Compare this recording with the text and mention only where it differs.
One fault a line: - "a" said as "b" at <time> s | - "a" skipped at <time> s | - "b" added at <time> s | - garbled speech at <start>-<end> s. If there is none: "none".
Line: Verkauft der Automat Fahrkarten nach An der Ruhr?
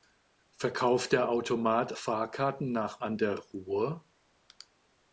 none